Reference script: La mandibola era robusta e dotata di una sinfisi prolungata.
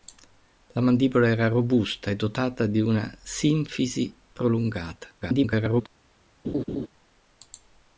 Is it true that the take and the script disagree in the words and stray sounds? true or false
true